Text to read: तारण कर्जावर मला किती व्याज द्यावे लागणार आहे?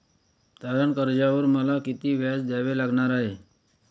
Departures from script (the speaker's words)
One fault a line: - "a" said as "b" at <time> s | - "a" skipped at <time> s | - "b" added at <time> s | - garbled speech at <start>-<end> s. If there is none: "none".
none